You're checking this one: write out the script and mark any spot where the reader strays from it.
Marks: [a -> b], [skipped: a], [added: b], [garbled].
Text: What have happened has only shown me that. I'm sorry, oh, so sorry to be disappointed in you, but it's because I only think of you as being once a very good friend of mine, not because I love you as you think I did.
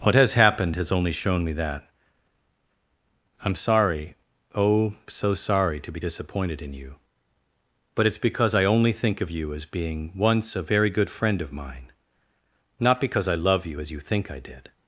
What [have -> has] happened has only shown me that. I'm sorry, oh, so sorry to be disappointed in you, but it's because I only think of you as being once a very good friend of mine, not because I love you as you think I did.